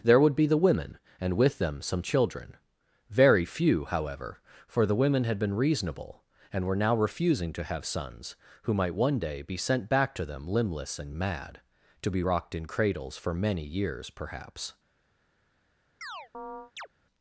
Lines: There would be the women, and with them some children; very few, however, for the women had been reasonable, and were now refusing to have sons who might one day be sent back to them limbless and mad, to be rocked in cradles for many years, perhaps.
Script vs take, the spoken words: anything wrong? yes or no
no